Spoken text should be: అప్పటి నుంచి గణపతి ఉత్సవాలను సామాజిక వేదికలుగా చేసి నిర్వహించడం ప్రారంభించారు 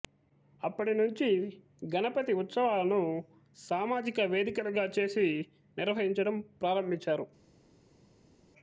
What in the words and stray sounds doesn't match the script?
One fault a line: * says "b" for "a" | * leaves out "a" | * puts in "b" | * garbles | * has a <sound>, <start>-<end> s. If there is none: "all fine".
all fine